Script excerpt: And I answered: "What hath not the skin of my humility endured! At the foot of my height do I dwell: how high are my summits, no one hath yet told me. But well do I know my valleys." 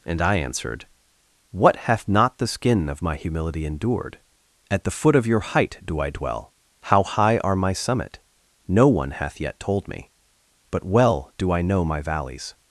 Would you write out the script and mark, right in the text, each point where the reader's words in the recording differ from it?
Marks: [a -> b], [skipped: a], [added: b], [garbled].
And I answered: "What hath not the skin of my humility endured! At the foot of [my -> your] height do I dwell: how high are my [summits, -> summit] no one hath yet told me. But well do I know my valleys."